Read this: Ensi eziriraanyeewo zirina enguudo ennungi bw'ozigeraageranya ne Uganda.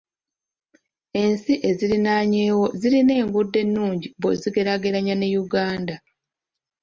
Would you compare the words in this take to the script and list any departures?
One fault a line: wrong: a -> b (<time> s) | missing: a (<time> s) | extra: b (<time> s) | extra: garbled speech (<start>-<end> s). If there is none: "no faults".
no faults